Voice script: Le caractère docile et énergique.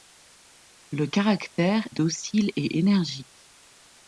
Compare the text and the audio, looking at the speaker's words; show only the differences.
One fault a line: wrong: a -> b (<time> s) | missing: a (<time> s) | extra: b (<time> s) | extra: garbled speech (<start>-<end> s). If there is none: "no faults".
no faults